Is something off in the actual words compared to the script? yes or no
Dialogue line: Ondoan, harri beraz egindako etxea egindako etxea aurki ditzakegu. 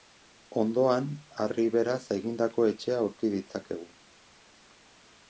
yes